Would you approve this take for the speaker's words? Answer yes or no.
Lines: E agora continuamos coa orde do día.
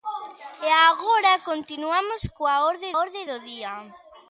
no